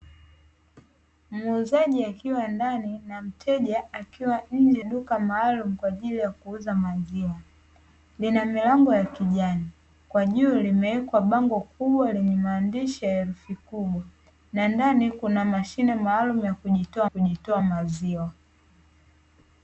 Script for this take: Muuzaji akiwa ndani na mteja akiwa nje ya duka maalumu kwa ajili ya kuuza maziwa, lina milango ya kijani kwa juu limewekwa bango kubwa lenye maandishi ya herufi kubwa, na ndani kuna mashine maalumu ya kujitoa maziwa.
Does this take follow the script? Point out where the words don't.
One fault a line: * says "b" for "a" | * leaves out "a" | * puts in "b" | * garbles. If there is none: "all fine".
* leaves out "ya"
* puts in "kujitoa"